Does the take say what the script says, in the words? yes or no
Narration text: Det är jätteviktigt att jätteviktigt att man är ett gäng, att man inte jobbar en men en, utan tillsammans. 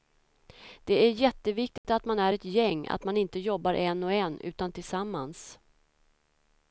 no